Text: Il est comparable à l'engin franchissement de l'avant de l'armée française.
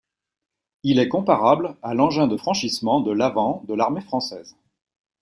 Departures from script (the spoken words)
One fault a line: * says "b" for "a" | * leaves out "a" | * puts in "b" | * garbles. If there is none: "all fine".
* puts in "de"